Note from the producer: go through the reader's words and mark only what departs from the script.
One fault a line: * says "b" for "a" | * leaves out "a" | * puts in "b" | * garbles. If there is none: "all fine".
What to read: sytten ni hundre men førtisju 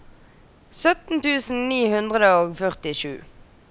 * puts in "tusen"
* says "og" for "men"